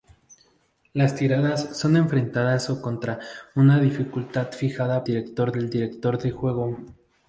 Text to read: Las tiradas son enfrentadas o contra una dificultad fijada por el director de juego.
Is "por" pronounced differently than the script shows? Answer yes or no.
yes